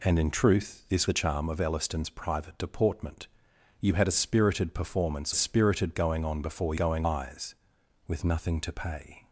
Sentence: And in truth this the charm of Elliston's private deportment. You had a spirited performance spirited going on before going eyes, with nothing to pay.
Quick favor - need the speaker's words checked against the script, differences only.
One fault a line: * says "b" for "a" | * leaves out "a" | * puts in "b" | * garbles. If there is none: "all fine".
all fine